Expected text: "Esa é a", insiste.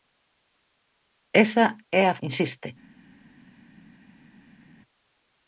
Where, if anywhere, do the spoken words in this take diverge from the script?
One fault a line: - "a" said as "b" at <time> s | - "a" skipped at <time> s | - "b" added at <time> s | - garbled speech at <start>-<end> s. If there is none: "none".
none